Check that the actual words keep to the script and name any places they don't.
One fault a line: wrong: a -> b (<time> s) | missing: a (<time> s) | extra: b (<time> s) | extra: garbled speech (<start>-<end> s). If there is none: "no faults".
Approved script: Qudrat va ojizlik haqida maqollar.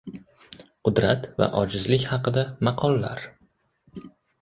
no faults